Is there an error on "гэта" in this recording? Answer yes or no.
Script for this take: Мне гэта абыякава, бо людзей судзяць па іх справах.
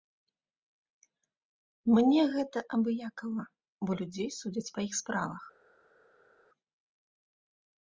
no